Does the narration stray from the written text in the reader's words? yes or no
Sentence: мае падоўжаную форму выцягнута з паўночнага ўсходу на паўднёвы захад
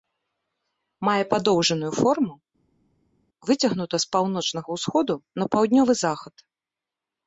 no